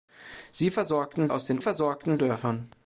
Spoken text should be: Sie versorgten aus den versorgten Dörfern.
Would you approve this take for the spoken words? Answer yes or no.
yes